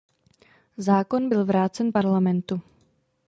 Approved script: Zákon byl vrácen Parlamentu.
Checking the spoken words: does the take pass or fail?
pass